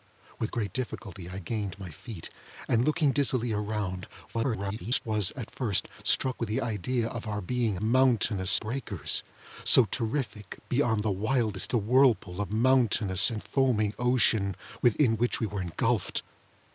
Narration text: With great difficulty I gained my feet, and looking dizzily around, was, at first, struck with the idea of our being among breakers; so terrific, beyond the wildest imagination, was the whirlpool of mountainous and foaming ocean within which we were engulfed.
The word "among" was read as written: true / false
false